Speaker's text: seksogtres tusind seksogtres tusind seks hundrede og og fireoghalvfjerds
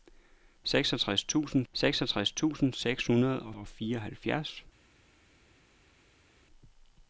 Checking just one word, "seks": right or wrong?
right